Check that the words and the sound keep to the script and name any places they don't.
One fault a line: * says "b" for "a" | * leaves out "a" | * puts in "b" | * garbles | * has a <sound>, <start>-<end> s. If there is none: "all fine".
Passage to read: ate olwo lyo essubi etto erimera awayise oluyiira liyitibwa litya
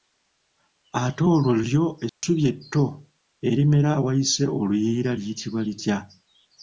* has a dropout, 2.1-2.2 s